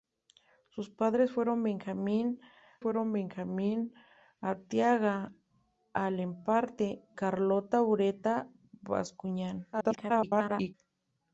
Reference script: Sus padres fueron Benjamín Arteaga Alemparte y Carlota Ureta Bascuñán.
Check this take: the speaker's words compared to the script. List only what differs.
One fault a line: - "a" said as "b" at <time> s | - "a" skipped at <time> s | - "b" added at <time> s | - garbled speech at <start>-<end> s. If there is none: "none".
- "fueron Benjamín" added at 2.8 s
- "y" skipped at 7.0 s
- garbled speech at 9.7-10.7 s